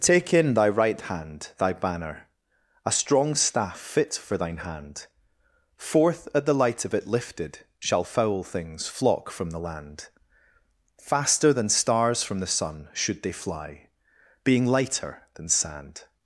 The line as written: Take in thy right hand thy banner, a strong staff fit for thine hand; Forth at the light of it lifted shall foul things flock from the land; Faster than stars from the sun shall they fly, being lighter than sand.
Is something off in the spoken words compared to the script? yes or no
yes